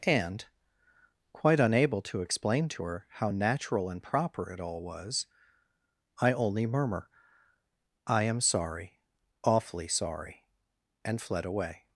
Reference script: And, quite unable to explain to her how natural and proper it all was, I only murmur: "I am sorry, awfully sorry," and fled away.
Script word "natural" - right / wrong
right